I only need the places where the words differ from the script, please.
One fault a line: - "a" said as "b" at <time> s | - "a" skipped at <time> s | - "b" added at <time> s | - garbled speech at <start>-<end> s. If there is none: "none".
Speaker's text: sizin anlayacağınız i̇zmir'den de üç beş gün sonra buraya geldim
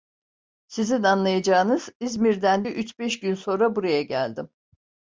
none